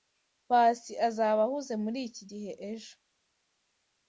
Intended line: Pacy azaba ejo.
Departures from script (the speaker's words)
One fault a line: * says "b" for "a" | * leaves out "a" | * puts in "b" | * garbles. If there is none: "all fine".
* puts in "ahuze muriki gihe"